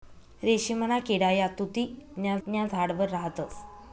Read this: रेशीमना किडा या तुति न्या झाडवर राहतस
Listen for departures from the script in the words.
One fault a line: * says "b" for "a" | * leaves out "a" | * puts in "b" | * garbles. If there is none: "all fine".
* puts in "न्या"